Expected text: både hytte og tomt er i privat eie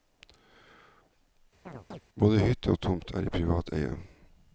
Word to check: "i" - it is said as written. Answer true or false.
true